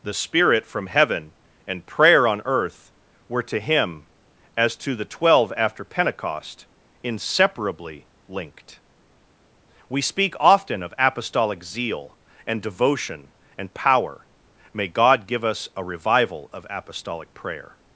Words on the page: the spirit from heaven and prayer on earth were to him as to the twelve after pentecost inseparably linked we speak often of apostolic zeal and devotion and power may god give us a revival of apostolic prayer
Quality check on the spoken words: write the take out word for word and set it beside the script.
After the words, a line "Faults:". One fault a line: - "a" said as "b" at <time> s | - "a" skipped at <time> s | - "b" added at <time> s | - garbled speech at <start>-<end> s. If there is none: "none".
the spirit from heaven and prayer on earth were to him as to the twelve after pentecost inseparably linked we speak often of apostolic zeal and devotion and power may god give us a revival of apostolic prayer
Faults:
none